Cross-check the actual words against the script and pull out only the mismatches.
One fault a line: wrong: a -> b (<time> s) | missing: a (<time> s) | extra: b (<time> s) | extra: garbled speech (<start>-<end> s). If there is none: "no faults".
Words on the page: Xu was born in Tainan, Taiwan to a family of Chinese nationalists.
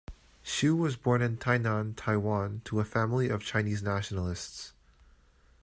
no faults